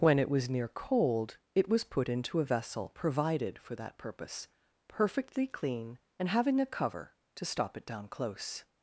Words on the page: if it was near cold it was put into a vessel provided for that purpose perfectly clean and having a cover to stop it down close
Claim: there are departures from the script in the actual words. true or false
true